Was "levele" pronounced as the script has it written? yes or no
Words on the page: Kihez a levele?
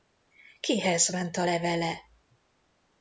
yes